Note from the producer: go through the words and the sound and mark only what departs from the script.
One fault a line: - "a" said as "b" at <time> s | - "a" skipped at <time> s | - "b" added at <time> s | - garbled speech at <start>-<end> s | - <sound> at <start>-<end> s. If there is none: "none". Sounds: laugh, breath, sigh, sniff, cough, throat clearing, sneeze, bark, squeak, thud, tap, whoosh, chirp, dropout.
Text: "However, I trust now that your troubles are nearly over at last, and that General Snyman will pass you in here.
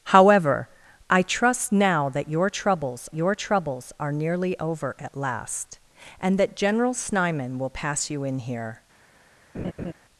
- "your troubles" added at 3.1 s
- laugh at 9.5-9.9 s